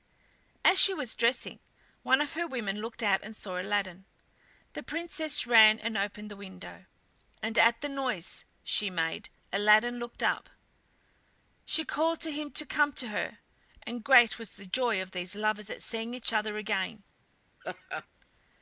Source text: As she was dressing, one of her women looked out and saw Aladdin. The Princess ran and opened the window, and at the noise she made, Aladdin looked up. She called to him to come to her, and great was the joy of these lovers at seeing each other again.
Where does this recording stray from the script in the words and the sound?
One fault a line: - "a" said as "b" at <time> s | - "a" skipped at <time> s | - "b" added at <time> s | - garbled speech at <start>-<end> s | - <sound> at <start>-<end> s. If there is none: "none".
- laugh at 17.6-18.1 s